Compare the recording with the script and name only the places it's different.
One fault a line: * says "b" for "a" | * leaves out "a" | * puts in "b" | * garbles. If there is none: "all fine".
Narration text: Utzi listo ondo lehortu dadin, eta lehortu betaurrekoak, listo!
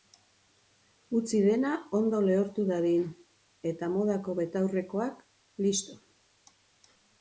* says "dena" for "listo"
* says "modako" for "lehortu"